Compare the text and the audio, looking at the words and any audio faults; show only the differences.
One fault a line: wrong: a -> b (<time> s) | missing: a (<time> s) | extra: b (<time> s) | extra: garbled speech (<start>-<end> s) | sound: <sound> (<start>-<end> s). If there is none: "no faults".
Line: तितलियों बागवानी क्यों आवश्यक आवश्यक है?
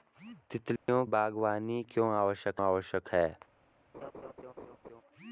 sound: dropout (0.8-0.9 s)
sound: laugh (3.9-5.0 s)